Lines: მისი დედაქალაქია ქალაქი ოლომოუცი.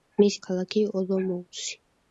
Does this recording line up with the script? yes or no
no